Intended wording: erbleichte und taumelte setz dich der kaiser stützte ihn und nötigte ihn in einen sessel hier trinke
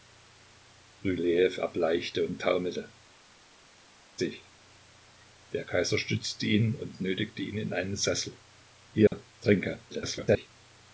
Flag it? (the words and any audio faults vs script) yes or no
yes